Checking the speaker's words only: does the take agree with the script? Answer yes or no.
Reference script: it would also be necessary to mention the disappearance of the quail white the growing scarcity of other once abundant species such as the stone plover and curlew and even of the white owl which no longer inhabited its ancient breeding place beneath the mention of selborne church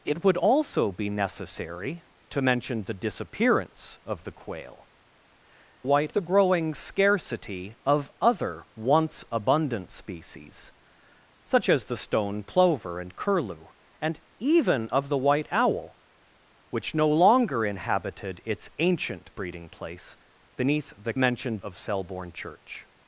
yes